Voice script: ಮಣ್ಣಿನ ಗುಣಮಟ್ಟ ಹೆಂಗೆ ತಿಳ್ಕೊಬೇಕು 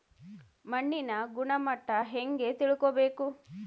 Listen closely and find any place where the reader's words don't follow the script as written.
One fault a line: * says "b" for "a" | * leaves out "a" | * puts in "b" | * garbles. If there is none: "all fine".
all fine